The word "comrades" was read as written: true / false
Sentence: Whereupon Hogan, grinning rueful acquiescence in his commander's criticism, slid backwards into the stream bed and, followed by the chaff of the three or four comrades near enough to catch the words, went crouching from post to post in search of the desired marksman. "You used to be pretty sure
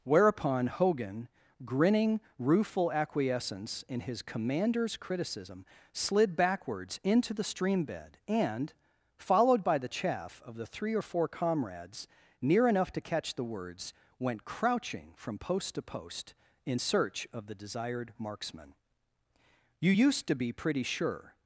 true